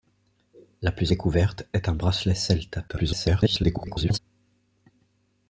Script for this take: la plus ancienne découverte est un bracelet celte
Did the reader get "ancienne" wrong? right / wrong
wrong